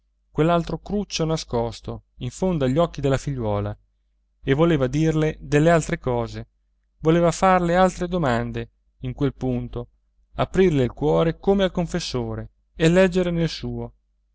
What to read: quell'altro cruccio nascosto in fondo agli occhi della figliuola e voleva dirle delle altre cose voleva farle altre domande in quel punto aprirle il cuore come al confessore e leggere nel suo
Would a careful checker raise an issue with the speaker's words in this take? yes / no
no